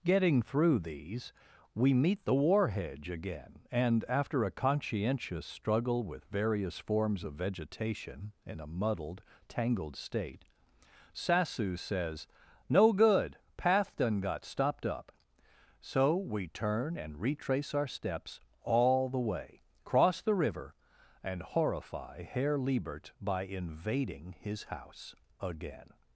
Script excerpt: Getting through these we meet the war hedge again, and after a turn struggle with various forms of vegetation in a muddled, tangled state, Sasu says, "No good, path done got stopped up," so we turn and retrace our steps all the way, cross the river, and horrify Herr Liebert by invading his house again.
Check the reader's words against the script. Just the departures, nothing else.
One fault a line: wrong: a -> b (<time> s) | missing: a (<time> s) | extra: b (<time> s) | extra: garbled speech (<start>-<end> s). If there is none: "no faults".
wrong: turn -> conscientious (4.5 s)